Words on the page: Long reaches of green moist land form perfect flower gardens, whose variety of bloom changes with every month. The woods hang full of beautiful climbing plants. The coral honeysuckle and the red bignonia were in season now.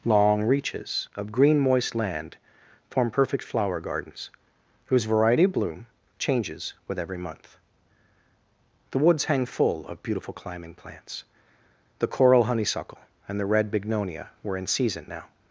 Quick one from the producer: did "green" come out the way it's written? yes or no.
yes